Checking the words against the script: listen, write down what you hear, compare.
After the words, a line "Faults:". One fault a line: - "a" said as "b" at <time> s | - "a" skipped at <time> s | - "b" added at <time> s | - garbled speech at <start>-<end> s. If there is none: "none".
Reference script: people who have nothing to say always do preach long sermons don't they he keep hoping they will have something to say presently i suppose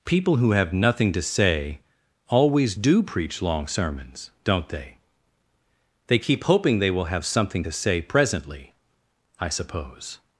people who have nothing to say always do preach long sermons don't they they keep hoping they will have something to say presently i suppose
Faults:
- "he" said as "they" at 6.1 s